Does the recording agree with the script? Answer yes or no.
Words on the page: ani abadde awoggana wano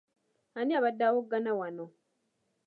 yes